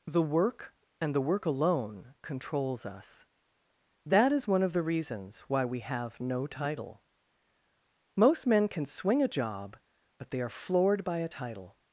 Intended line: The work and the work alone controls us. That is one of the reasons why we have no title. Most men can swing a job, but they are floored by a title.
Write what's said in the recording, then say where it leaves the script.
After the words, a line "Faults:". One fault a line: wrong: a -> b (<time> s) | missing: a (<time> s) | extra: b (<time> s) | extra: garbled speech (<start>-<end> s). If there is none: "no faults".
The work and the work alone controls us. That is one of the reasons why we have no title. Most men can swing a job, but they are floored by a title.
Faults:
no faults